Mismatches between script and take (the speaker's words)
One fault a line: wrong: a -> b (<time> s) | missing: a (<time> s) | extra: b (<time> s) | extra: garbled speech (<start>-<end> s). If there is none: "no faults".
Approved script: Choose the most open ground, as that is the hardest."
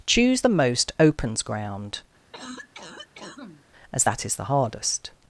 wrong: open -> opens (1.0 s)